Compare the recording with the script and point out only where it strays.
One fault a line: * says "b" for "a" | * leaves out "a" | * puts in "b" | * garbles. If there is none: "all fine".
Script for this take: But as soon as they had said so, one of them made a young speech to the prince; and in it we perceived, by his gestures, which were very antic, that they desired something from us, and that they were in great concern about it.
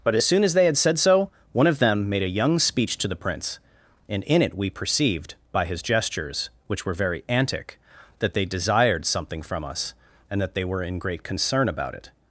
all fine